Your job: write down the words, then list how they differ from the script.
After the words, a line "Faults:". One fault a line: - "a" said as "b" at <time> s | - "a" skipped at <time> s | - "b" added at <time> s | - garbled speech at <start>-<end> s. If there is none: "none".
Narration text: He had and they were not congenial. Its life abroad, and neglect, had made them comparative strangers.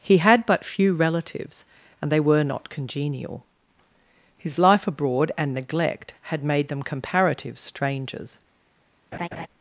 He had but few relatives, and they were not congenial. His life abroad, and neglect, had made them comparative strangers.
Faults:
- "but few relatives" added at 0.5 s
- "Its" said as "His" at 4.3 s